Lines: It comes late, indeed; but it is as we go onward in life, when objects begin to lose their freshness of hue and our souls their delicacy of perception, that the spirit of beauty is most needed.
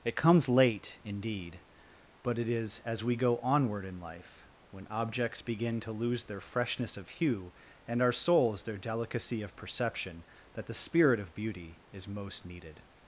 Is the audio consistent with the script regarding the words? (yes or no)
yes